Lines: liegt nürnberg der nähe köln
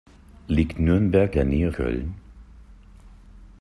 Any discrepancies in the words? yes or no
no